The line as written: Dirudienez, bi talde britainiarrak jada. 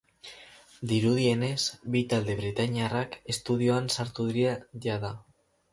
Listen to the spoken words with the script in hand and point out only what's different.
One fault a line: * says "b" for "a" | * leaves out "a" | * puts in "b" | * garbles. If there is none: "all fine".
* puts in "estudioan sartu dira"